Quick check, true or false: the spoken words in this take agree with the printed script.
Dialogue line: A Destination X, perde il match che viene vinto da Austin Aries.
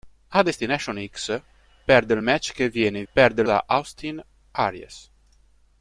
false